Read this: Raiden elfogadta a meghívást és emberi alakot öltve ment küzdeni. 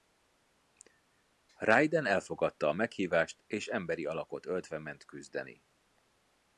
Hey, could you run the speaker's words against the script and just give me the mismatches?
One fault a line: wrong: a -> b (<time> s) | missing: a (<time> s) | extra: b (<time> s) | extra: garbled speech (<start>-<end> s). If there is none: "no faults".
no faults